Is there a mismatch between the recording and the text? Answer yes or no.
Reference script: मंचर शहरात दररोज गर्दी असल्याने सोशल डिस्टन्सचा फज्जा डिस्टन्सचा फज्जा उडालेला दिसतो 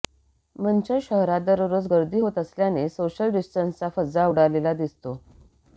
yes